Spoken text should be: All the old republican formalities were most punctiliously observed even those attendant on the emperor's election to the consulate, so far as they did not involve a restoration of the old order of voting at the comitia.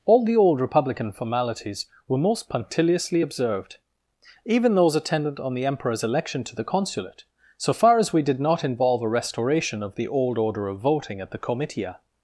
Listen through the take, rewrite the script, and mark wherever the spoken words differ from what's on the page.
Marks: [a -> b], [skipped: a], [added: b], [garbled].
All the old republican formalities were most punctiliously observed even those attendant on the emperor's election to the consulate, so far as [they -> we] did not involve a restoration of the old order of voting at the comitia.